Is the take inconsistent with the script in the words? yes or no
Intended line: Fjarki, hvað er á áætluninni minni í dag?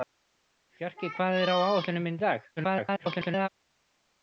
yes